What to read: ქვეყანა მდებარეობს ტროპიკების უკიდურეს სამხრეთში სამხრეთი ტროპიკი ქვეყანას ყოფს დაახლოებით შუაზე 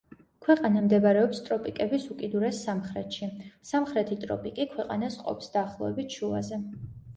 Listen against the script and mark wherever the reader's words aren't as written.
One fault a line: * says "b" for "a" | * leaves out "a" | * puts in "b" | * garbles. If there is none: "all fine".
all fine